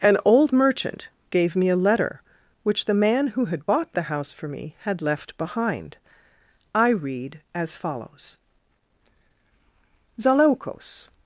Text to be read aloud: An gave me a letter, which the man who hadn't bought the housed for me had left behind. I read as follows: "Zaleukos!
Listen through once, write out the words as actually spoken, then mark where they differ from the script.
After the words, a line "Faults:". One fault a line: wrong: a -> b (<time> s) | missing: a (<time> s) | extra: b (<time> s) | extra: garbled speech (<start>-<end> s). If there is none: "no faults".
An old merchant gave me a letter, which the man who had bought the house for me had left behind. I read as follows: "Zaleukos!
Faults:
extra: old merchant (0.2 s)
wrong: hadn't -> had (3.5 s)
wrong: housed -> house (4.0 s)